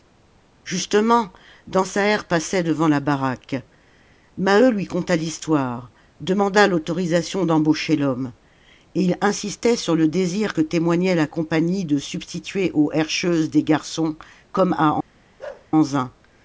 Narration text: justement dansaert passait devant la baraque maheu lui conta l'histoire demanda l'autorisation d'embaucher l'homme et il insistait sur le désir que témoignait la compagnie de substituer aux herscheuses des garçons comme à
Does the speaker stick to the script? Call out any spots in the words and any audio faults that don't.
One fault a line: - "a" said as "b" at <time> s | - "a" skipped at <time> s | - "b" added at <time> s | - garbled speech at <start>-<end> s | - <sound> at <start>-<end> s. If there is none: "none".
- bark at 15.4-15.7 s